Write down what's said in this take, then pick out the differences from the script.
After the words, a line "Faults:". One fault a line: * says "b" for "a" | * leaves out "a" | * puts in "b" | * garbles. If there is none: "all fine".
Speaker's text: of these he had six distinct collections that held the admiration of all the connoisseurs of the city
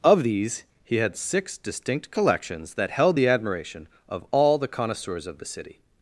of these he had six distinct collections that held the admiration of all the connoisseurs of the city
Faults:
all fine